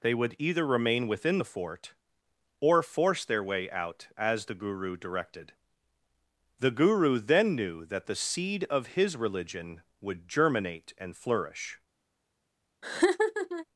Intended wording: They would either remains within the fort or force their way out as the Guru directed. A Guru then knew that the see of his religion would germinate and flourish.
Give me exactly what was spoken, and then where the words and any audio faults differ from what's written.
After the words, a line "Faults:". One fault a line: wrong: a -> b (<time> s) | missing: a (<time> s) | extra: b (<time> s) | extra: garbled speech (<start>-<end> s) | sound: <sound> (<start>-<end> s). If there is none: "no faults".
They would either remain within the fort or force their way out as the Guru directed. The Guru then knew that the seed of his religion would germinate and flourish.
Faults:
wrong: remains -> remain (0.7 s)
wrong: A -> The (6.6 s)
wrong: see -> seed (8.2 s)
sound: laugh (12.8-13.7 s)